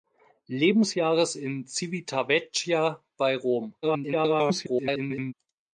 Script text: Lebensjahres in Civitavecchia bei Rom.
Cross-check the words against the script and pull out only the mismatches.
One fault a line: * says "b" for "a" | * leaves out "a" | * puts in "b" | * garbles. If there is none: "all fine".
* garbles